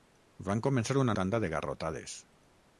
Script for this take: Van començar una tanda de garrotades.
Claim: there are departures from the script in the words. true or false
false